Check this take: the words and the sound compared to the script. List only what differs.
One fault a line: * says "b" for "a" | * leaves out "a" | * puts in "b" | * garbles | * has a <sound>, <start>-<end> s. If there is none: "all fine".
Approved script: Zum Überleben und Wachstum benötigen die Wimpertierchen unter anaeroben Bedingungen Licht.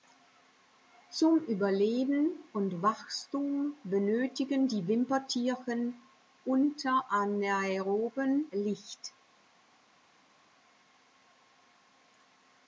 * leaves out "Bedingungen"